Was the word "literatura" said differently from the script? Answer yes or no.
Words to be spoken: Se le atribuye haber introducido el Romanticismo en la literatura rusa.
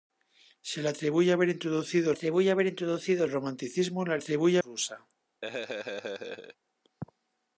yes